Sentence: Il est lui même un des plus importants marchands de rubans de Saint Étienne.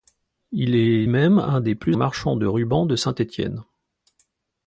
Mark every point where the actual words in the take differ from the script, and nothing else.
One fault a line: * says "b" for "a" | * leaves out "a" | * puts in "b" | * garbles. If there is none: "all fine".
* leaves out "lui"
* leaves out "importants"